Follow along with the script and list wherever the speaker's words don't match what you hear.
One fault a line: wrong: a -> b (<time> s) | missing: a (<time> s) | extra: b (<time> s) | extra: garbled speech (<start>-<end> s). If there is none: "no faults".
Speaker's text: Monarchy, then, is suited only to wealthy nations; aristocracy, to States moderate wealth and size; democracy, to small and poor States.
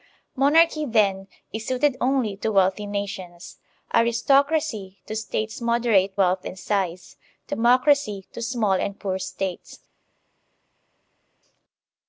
no faults